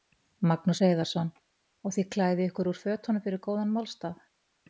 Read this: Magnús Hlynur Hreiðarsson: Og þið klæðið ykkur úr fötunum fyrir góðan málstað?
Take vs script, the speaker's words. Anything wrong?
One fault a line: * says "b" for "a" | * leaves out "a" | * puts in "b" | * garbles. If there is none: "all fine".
* leaves out "Hlynur"